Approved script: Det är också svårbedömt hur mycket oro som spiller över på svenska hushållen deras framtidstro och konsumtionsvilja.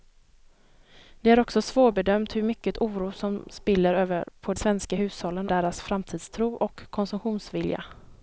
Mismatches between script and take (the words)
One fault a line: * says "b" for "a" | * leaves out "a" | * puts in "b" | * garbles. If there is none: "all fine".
all fine